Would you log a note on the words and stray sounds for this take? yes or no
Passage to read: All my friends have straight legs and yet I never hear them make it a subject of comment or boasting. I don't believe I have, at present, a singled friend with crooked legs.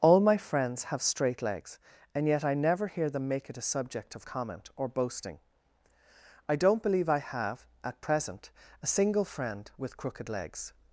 yes